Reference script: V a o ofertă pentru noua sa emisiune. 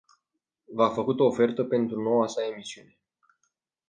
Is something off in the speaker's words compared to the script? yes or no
yes